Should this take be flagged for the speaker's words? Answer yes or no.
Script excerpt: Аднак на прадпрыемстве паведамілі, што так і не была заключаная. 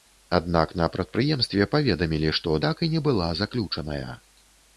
no